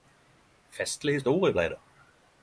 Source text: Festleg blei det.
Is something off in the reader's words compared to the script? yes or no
yes